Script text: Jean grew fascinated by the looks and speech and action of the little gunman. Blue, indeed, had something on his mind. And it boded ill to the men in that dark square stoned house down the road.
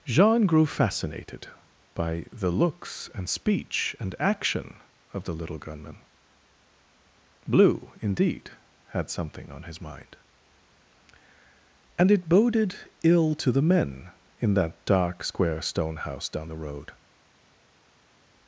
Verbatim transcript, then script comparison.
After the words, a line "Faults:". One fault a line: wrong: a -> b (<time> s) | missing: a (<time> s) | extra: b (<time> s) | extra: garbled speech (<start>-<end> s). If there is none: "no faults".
Jean grew fascinated by the looks and speech and action of the little gunman. Blue, indeed, had something on his mind. And it boded ill to the men in that dark square stone house down the road.
Faults:
wrong: stoned -> stone (15.6 s)